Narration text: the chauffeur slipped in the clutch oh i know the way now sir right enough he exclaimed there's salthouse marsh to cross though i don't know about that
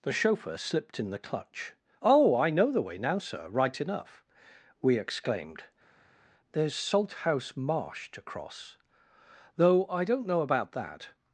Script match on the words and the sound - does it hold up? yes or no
no